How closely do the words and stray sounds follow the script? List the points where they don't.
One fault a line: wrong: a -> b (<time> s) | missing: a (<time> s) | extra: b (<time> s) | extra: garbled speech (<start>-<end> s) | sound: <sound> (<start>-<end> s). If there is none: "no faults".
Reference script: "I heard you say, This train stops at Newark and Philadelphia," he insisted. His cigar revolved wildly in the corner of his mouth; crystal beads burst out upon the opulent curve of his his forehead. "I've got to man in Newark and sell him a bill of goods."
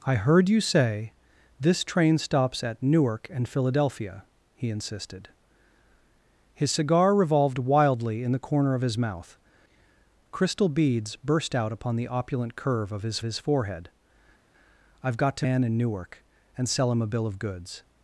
no faults